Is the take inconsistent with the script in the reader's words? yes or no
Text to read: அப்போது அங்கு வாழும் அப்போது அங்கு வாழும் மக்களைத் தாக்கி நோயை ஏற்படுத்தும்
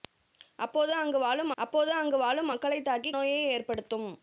no